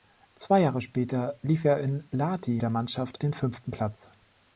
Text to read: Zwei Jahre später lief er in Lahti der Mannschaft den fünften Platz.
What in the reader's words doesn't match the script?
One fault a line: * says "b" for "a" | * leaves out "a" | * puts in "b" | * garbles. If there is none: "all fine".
all fine